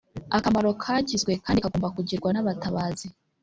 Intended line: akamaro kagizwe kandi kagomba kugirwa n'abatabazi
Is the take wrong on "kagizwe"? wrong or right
right